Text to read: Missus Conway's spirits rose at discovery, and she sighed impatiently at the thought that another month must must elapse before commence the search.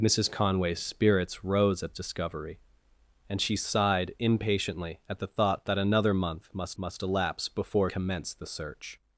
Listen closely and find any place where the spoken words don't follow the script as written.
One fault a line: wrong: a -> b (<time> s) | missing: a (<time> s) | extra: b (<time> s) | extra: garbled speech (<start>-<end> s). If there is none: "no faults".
no faults